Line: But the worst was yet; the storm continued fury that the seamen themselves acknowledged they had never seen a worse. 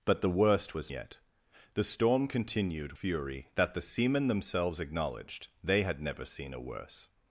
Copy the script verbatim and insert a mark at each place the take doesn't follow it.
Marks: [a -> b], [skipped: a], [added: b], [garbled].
But the worst was yet; the storm continued fury that the seamen themselves acknowledged they had never seen a worse.